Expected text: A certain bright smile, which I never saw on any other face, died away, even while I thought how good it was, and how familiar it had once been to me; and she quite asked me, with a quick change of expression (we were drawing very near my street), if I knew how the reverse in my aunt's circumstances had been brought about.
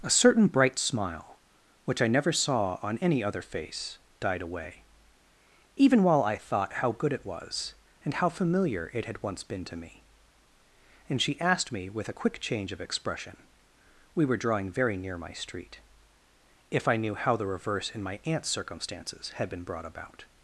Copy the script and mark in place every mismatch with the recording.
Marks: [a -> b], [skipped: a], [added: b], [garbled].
A certain bright smile, which I never saw on any other face, died away, even while I thought how good it was, and how familiar it had once been to me; and she [skipped: quite] asked me, with a quick change of expression (we were drawing very near my street), if I knew how the reverse in my aunt's circumstances had been brought about.